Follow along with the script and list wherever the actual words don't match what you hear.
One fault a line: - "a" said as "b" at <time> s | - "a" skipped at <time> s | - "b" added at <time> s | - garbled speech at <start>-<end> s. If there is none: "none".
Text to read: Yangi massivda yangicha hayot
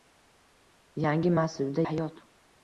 - "yangicha" skipped at 1.8 s